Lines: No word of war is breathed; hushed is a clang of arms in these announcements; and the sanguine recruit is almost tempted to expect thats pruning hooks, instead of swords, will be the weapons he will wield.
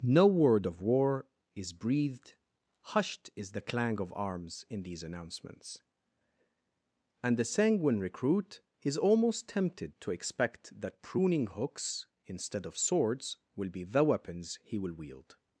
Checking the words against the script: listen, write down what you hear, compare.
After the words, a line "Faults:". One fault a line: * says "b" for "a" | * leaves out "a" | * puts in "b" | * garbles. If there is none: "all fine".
No word of war is breathed; hushed is the clang of arms in these announcements; and the sanguine recruit is almost tempted to expect that pruning hooks, instead of swords, will be the weapons he will wield.
Faults:
* says "the" for "a"
* says "that" for "thats"